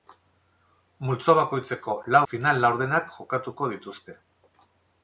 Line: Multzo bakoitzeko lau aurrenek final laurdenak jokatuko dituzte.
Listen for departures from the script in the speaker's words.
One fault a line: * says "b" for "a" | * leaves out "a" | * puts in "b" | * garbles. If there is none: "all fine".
* leaves out "aurrenek"